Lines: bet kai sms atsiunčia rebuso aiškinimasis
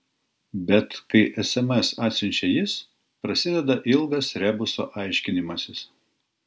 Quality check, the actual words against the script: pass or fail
fail